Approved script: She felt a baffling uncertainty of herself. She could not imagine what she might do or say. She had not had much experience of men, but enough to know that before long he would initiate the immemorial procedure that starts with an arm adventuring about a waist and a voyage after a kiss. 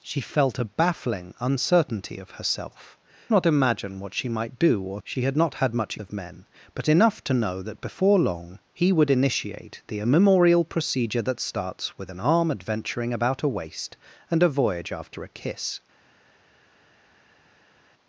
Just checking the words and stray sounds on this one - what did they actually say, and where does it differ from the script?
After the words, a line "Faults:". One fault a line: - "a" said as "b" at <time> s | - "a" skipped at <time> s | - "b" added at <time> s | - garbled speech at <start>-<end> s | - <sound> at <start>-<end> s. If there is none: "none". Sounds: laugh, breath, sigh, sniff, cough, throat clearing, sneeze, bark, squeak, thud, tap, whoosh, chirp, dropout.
She felt a baffling uncertainty of herself. Not imagine what she might do or. She had not had much of men, but enough to know that before long he would initiate the immemorial procedure that starts with an arm adventuring about a waist and a voyage after a kiss.
Faults:
- "She could" skipped at 3.0 s
- "say" skipped at 5.0 s
- "experience" skipped at 6.0 s